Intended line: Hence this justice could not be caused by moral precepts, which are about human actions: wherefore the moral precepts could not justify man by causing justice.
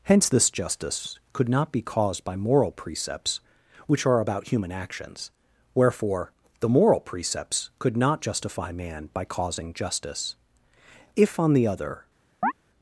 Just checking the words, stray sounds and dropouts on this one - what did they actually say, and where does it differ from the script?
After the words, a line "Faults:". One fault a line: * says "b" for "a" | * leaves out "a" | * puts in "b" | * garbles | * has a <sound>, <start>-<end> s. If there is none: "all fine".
Hence this justice could not be caused by moral precepts, which are about human actions: wherefore the moral precepts could not justify man by causing justice. If, on the other
Faults:
* puts in "If on the other"
* has a chirp, 12.4-12.5 s